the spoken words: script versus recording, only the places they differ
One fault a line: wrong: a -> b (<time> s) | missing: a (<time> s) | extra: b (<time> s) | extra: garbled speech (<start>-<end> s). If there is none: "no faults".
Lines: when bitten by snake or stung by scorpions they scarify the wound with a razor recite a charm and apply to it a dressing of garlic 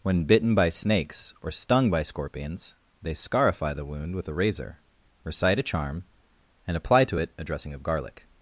wrong: snake -> snakes (0.7 s)